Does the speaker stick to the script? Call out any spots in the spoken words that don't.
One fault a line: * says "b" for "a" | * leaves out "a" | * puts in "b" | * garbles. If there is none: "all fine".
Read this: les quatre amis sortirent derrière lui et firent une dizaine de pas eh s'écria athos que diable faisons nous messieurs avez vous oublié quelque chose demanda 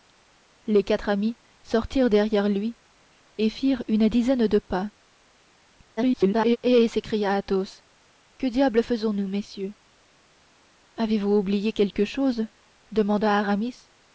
* garbles